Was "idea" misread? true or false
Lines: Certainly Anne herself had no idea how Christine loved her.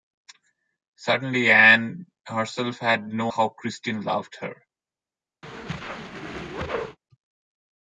true